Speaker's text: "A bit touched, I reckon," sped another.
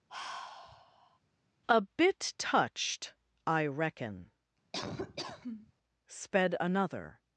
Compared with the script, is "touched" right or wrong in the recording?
right